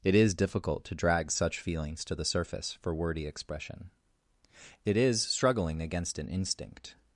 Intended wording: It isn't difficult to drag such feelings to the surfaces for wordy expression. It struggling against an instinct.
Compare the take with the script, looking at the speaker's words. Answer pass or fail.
fail